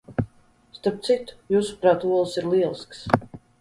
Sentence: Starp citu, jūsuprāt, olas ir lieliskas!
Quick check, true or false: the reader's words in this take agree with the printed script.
true